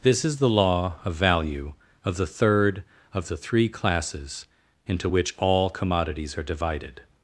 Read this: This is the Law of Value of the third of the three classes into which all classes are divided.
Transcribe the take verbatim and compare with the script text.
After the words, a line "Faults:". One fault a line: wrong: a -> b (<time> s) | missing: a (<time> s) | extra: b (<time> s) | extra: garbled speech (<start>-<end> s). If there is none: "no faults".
This is the Law of Value of the third of the three classes into which all commodities are divided.
Faults:
wrong: classes -> commodities (5.7 s)